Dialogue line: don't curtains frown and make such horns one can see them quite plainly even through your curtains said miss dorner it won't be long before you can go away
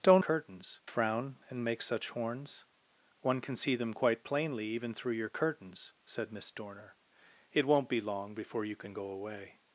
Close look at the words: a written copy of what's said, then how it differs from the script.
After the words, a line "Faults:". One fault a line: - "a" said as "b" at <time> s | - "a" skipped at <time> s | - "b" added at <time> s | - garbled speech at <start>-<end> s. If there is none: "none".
don't curtains frown and make such horns one can see them quite plainly even through your curtains said miss dorner it won't be long before you can go away
Faults:
none